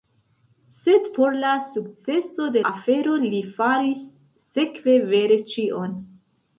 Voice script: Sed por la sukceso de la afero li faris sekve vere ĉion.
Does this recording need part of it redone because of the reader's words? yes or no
yes